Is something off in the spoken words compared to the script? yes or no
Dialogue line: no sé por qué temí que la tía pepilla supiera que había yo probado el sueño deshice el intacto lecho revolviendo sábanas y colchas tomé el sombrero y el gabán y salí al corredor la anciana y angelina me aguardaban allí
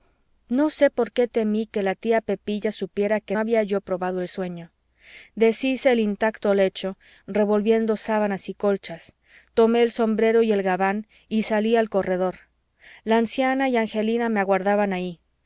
no